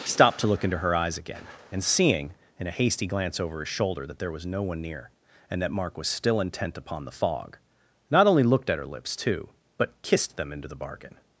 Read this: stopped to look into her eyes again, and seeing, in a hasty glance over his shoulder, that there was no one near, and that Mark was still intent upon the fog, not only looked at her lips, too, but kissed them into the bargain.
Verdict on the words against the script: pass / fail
pass